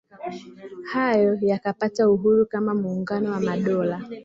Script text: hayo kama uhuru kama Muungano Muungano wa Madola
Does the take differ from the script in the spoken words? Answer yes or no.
yes